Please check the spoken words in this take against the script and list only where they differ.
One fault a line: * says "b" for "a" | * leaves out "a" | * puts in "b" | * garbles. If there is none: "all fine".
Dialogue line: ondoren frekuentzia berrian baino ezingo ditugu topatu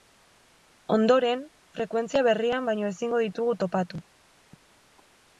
all fine